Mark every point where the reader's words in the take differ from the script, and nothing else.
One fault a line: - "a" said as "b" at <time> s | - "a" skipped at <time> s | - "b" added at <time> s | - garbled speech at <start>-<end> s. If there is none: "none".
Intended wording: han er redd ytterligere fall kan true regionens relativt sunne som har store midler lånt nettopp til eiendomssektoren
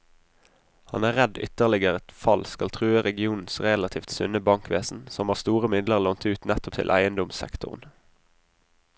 - "kan" said as "skal" at 2.5 s
- "bankvesen" added at 4.5 s
- "ut" added at 6.3 s